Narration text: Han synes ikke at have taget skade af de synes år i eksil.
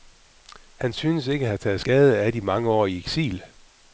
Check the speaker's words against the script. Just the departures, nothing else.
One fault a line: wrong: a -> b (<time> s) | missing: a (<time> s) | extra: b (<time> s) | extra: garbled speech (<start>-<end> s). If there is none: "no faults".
wrong: synes -> mange (2.4 s)